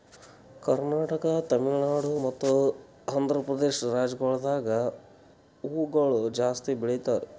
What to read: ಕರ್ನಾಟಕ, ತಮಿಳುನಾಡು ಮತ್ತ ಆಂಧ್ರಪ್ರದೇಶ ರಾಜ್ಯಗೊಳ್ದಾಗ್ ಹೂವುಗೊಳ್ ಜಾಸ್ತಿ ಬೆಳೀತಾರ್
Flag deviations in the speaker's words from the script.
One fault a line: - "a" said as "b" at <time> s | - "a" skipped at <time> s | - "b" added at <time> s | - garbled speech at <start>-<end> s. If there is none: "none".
none